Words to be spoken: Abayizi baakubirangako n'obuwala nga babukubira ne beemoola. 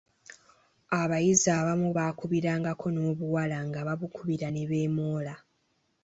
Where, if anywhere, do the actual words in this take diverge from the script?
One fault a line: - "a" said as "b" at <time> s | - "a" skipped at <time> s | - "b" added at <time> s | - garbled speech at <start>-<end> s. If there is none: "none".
- "abamu" added at 1.6 s